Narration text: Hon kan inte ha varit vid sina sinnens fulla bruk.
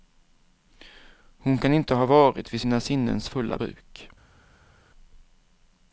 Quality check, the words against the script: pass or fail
pass